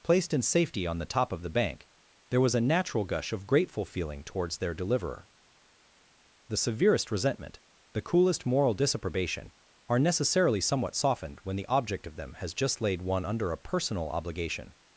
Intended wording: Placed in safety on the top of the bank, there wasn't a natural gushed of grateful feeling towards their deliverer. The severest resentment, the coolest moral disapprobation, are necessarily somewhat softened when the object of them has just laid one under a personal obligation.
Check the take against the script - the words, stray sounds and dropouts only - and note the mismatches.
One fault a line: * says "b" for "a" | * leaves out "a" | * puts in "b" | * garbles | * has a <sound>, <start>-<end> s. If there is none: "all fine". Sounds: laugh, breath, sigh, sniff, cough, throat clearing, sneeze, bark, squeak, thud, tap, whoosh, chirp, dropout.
* says "was" for "wasn't"
* says "gush" for "gushed"